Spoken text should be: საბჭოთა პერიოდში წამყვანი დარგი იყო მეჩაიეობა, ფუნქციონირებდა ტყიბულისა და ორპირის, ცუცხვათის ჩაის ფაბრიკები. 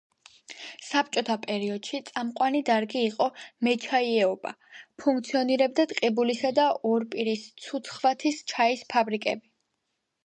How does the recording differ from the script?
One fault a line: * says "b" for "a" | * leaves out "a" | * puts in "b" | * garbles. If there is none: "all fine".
all fine